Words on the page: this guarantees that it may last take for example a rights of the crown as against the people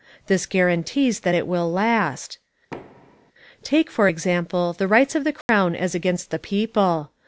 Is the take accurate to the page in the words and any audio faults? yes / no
no